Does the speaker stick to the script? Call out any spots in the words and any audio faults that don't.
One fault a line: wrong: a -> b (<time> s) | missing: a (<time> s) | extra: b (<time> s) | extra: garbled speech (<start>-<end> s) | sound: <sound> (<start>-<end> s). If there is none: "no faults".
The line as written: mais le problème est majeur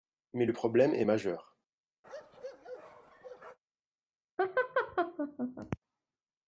sound: bark (2.0-3.6 s)
sound: laugh (4.4-5.8 s)